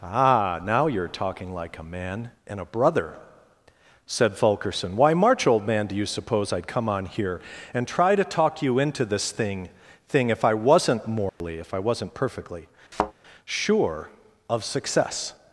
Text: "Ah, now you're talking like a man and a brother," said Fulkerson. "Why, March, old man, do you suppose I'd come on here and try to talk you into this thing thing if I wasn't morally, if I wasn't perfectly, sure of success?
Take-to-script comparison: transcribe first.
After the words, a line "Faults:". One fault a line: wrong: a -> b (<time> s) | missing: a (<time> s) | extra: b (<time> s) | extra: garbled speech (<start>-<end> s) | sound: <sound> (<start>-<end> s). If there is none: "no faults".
"Ah, now you're talking like a man and a brother," said Fulkerson. "Why, March, old man, do you suppose I'd come on here and try to talk you into this thing thing if I wasn't morally, if I wasn't perfectly, sure of success?
Faults:
sound: dropout (11.3-11.4 s)
sound: thud (12.9-13.1 s)